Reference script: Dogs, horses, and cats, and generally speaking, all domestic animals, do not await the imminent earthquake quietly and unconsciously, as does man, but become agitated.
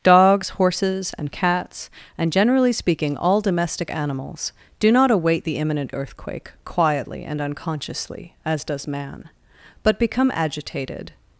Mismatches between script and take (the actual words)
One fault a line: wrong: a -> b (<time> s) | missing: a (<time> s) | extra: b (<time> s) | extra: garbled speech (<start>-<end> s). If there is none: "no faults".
no faults